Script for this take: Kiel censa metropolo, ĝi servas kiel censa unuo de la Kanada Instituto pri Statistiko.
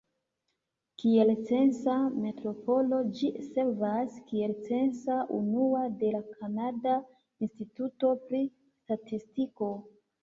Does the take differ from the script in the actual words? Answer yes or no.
no